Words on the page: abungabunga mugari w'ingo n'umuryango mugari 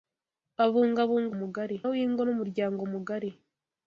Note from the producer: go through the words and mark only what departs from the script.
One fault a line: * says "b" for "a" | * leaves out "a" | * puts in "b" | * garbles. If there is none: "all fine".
all fine